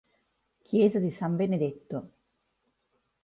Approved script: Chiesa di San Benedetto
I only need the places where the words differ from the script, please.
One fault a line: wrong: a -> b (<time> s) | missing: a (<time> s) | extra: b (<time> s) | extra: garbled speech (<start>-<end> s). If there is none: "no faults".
no faults